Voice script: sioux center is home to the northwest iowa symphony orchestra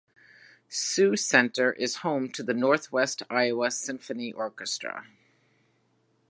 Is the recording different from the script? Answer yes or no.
no